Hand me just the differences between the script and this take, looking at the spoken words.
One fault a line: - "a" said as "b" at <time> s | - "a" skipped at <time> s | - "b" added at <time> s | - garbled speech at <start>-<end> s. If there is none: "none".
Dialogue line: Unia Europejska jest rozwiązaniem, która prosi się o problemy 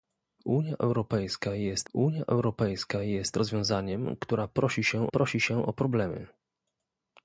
- "unia Europejska jest" added at 1.9 s
- "prosi się" added at 5.1 s